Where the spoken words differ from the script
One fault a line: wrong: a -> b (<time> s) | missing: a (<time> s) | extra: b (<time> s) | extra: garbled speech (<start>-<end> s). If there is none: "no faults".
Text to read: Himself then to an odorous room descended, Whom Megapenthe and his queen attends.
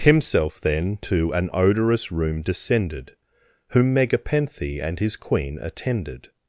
wrong: attends -> attended (5.6 s)